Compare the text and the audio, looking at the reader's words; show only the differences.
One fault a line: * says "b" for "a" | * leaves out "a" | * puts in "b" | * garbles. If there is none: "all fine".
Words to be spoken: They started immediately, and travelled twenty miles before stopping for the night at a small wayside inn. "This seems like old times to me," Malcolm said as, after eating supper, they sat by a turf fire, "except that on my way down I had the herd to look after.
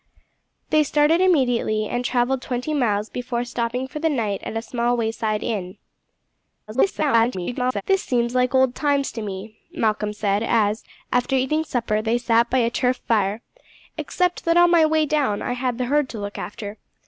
* garbles